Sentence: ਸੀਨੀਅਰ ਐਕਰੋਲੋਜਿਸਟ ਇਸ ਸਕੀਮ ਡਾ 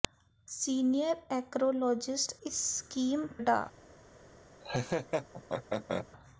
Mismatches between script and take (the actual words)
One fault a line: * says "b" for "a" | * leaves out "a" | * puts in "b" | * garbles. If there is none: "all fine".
all fine